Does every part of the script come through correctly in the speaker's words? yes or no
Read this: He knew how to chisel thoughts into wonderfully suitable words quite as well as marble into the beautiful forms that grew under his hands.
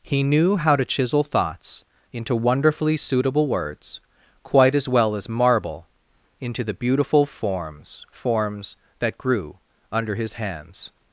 no